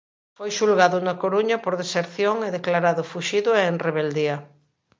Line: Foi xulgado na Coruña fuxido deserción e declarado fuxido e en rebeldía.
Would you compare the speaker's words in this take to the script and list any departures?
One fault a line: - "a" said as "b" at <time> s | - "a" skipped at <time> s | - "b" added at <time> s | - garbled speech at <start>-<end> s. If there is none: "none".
- "fuxido" said as "por" at 1.6 s